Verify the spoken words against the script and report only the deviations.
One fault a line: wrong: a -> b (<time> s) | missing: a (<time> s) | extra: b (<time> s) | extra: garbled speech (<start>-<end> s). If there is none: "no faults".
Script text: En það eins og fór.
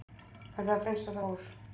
no faults